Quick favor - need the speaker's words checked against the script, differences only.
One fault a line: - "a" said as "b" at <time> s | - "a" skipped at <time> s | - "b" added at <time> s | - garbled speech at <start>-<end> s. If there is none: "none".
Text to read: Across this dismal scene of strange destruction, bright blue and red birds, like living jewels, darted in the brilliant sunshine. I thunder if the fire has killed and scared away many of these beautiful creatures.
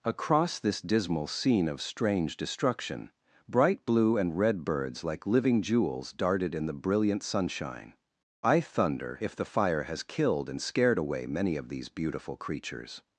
none